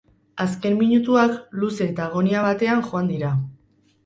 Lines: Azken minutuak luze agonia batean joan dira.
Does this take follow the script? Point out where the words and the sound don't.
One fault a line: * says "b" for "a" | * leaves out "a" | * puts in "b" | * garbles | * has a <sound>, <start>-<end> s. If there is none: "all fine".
* puts in "eta"